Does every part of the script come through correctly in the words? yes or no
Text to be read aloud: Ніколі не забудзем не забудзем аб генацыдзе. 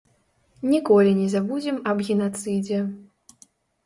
no